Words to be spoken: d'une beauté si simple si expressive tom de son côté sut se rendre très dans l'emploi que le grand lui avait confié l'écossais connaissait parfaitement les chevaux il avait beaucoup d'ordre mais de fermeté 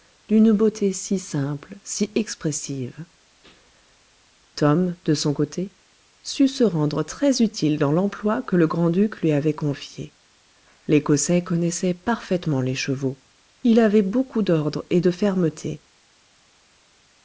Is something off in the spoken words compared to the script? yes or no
yes